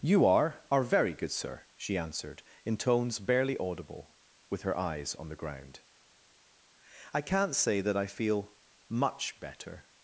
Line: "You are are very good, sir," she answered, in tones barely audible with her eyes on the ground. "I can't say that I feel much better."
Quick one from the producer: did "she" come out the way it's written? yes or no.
yes